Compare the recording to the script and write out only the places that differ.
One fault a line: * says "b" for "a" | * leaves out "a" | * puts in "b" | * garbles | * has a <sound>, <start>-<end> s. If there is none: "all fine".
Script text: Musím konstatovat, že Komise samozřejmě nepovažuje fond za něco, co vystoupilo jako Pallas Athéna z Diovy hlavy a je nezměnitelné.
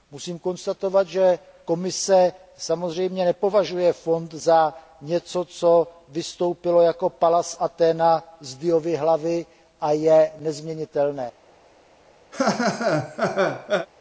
* has a laugh, 12.3-13.9 s